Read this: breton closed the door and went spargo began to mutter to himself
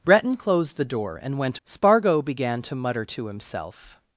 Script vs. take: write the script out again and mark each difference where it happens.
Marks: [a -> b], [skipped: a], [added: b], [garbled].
breton closed the door and went spargo began to mutter to himself